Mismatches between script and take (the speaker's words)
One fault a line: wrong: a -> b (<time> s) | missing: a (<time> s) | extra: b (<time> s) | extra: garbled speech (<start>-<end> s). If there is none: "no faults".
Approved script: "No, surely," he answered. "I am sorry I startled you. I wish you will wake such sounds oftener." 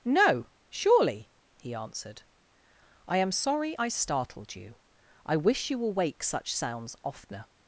no faults